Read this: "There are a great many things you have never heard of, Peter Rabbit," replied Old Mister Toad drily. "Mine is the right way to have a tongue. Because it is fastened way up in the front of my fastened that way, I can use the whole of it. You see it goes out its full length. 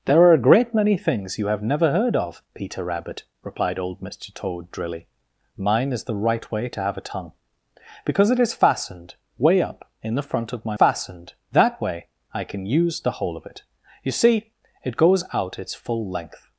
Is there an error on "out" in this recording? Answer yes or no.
no